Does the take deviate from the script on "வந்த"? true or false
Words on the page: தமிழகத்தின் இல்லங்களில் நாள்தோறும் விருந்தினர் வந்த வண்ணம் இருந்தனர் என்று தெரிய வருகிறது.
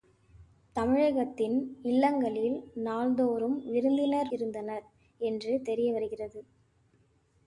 true